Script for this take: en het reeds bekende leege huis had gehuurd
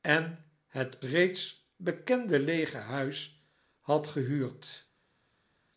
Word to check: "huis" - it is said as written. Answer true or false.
true